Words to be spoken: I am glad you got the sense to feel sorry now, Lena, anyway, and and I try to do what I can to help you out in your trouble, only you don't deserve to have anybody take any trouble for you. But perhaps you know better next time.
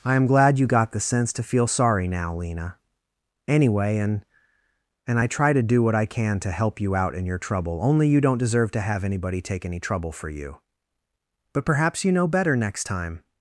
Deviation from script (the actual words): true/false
false